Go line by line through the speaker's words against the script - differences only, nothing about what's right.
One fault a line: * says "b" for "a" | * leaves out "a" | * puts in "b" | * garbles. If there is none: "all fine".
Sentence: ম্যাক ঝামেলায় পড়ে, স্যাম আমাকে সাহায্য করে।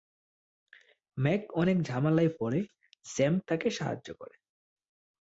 * puts in "অনেক"
* says "তাকে" for "আমাকে"